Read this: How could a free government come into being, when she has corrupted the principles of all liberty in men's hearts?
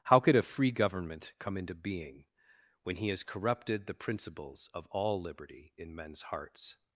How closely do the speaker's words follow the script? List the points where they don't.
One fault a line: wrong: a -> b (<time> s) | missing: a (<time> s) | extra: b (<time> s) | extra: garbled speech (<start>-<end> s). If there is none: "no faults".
wrong: she -> he (3.0 s)